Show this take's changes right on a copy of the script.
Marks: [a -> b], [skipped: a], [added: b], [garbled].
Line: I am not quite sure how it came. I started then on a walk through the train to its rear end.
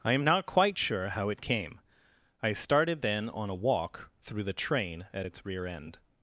I am not quite sure how it came. I started then on a walk through the train [to -> at] its rear end.